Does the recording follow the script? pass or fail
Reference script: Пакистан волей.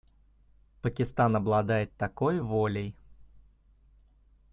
fail